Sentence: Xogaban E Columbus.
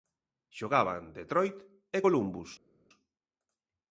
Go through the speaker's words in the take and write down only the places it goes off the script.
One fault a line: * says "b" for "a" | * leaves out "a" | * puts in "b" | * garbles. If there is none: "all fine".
* puts in "Detroit"